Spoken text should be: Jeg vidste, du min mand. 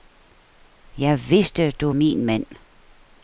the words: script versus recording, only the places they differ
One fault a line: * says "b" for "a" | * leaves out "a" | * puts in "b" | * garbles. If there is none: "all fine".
all fine